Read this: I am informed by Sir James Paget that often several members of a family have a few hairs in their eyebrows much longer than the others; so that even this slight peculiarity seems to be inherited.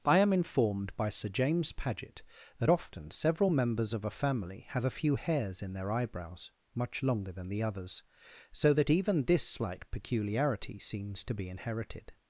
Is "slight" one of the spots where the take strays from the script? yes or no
no